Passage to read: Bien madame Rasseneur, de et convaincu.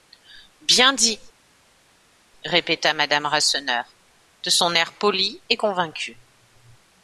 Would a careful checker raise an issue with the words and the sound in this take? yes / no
yes